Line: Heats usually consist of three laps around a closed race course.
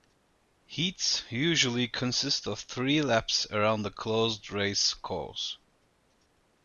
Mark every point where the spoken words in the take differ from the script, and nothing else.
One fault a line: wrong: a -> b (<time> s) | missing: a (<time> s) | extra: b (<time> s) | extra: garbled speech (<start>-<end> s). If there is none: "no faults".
no faults